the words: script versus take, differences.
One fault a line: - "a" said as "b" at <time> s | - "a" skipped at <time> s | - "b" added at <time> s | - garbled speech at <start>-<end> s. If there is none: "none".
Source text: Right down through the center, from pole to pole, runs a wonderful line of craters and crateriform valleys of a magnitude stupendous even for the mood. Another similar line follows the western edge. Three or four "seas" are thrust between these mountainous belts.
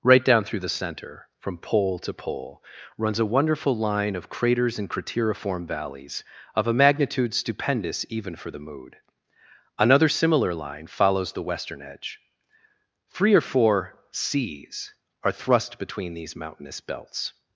none